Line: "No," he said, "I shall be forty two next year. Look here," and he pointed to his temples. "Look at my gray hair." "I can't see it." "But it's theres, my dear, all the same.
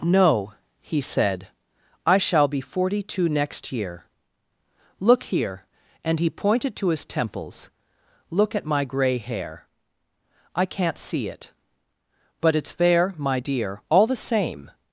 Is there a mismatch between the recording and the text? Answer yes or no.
yes